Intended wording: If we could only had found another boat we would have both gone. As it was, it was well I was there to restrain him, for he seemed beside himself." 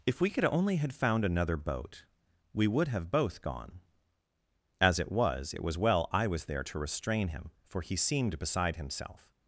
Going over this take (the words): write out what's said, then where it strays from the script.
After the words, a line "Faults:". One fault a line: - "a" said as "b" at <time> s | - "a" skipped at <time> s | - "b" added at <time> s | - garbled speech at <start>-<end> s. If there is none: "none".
If we could only had found another boat we would have both gone. As it was, it was well I was there to restrain him, for he seemed beside himself."
Faults:
none